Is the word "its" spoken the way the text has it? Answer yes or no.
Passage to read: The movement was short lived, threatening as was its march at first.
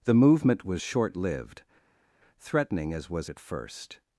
no